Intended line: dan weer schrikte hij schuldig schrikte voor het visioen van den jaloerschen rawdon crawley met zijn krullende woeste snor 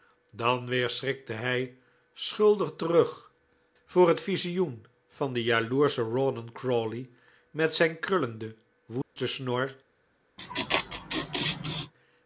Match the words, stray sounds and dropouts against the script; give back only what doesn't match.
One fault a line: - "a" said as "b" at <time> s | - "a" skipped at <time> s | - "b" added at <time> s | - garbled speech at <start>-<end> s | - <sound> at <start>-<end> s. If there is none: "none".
- "schrikte" said as "terug" at 2.8 s
- dropout at 9.0-9.2 s
- laugh at 10.4-11.9 s